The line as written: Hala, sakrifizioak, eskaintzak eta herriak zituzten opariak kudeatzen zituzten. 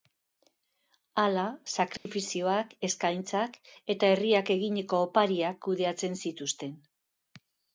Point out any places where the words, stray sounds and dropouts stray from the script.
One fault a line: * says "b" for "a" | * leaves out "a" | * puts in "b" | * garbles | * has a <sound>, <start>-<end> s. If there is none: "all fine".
* has a dropout, 2.0-2.1 s
* says "eginiko" for "zituzten"